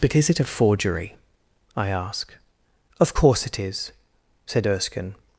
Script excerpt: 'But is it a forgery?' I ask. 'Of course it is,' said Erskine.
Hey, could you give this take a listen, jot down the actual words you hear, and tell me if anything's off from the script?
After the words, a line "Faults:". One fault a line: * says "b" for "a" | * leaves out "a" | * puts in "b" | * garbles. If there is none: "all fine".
'But is it a forgery?' I ask. 'Of course it is,' said Erskine.
Faults:
all fine